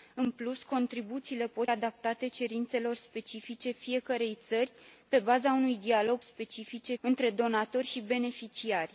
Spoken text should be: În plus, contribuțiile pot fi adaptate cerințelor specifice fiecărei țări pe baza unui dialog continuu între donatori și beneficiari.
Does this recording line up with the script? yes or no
no